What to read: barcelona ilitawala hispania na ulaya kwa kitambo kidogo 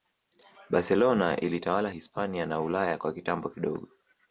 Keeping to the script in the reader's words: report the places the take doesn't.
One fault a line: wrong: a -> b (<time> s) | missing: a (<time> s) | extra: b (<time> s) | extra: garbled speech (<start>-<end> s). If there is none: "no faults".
no faults